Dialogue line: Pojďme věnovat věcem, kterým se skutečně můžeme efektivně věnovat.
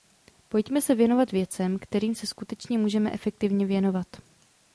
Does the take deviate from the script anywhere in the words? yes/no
yes